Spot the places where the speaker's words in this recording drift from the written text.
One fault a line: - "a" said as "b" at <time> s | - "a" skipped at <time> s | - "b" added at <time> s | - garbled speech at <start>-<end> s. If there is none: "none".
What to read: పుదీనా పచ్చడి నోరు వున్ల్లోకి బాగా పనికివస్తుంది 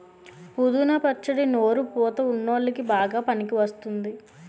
- "పుతా" added at 1.9 s